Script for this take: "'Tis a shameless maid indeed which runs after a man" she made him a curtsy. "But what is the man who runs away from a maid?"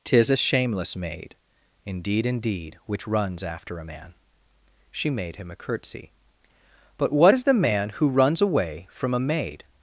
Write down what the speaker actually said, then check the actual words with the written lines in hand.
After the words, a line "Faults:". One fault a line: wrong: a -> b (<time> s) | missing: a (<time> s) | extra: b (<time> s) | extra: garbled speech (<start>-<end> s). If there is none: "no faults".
"'Tis a shameless maid indeed indeed which runs after a man" she made him a curtsy. "But what is the man who runs away from a maid?"
Faults:
extra: indeed (2.2 s)